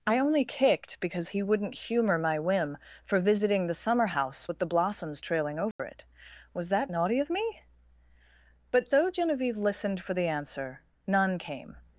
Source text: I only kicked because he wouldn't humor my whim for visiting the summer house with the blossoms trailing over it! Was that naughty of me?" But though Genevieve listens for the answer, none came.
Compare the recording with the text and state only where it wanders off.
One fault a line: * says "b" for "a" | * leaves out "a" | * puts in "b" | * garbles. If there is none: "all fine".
* says "listened" for "listens"